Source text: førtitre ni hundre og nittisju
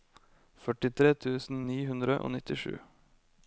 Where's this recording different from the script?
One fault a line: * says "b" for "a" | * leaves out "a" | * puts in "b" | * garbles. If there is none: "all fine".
* puts in "tusen"